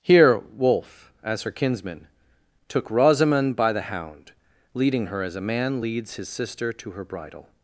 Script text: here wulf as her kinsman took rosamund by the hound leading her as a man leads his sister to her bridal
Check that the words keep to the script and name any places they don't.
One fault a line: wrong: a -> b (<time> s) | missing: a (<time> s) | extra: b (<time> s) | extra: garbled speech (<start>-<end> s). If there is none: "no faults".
no faults